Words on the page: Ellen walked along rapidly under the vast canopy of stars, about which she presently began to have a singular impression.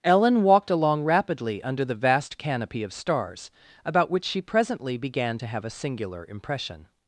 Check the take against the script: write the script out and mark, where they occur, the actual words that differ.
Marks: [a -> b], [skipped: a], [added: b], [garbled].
Ellen walked along rapidly under the vast canopy of stars, about which she presently began to have a singular impression.